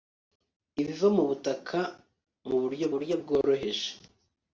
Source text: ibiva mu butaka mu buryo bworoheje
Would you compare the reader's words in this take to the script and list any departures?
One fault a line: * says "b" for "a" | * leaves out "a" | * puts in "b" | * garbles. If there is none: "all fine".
* puts in "buryo"